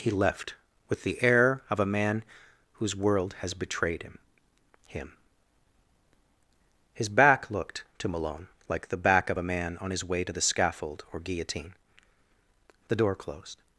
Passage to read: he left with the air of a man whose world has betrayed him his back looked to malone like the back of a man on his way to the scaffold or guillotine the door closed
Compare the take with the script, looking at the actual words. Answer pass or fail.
fail